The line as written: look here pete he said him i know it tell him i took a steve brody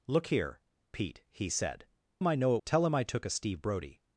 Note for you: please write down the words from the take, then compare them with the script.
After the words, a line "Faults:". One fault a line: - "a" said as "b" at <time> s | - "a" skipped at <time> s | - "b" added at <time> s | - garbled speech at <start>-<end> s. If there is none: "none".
look here pete he said him i know it tell him i took a steve brody
Faults:
none